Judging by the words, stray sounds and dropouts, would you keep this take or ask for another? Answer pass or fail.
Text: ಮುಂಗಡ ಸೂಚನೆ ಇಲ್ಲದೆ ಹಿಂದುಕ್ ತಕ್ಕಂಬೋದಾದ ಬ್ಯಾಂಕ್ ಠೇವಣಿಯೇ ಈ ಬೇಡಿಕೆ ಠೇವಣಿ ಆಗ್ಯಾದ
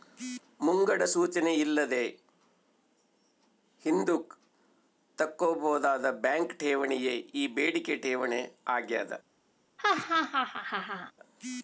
fail